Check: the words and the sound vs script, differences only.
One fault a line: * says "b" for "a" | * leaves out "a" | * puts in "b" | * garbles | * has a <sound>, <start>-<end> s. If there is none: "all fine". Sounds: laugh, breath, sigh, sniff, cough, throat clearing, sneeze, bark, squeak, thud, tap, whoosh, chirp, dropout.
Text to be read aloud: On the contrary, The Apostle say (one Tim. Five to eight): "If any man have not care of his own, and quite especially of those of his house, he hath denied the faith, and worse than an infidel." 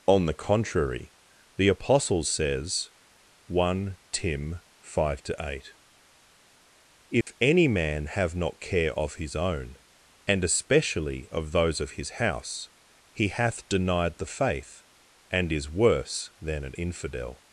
* says "says" for "say"
* has a dropout, 7.2-7.3 s
* leaves out "quite"
* puts in "is"